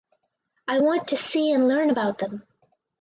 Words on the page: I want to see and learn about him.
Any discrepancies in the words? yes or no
yes